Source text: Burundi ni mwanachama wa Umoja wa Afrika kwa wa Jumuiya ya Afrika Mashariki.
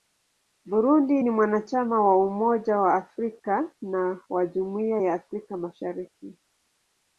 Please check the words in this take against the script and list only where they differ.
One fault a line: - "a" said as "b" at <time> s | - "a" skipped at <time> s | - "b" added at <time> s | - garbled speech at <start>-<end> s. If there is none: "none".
- "kwa" said as "na" at 3.8 s